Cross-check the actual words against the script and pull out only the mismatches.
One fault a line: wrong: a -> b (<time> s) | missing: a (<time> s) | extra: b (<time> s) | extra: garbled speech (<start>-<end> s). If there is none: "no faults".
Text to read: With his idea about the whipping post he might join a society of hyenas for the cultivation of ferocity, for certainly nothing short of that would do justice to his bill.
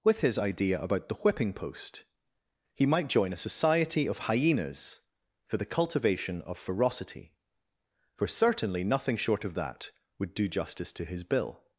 no faults